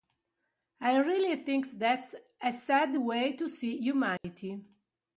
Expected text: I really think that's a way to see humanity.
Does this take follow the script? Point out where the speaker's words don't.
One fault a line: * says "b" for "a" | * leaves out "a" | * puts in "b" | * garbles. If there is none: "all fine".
* puts in "sad"